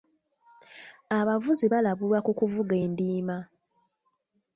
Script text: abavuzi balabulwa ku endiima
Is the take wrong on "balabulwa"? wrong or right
right